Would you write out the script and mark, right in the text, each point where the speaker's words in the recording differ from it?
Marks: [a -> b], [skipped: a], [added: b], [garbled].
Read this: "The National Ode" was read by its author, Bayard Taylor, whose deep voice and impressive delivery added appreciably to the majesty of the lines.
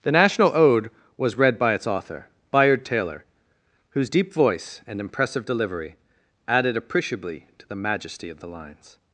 "The National Ode" was read by its author, Bayard Taylor, whose deep voice and impressive delivery added appreciably to the majesty of the lines.